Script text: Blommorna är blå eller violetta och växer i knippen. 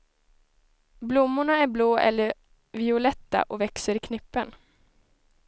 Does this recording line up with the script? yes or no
yes